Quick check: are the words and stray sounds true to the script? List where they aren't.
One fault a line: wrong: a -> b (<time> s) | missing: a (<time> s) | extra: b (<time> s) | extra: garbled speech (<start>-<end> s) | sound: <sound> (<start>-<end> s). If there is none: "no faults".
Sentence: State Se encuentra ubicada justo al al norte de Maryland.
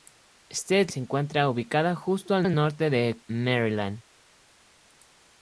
no faults